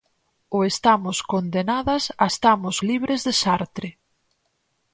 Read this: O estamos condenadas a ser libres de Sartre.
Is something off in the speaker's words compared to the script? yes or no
yes